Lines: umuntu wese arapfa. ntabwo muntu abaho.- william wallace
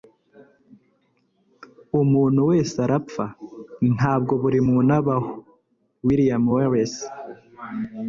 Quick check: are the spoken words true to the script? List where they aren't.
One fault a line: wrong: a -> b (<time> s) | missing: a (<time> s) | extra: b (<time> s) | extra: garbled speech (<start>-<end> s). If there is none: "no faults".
extra: buri (4.4 s)